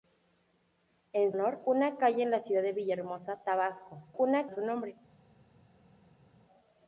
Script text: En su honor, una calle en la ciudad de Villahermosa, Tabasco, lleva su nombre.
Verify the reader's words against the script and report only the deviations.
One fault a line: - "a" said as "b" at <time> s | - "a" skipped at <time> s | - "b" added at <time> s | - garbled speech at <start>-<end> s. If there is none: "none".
- "su" skipped at 1.3 s
- "lleva" said as "una" at 4.2 s